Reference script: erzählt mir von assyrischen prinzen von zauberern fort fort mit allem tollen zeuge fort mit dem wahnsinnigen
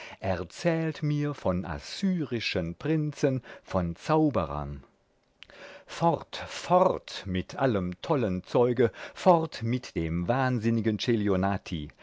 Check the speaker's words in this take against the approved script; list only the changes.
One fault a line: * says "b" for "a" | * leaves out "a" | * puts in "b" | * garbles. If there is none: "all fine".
all fine